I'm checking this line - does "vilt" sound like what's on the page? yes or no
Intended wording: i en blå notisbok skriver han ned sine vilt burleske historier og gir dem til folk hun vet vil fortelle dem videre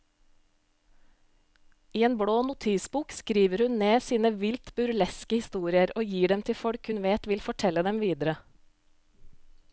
yes